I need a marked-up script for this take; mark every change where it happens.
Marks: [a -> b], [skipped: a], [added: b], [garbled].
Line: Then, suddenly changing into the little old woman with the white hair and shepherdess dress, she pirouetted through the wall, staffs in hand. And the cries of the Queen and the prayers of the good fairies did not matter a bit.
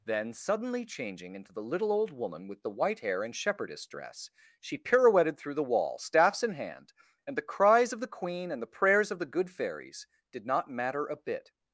Then, suddenly changing into the little old woman with the white hair and shepherdess dress, she pirouetted through the wall, staffs in hand. And the cries of the Queen and the prayers of the good fairies did not matter a bit.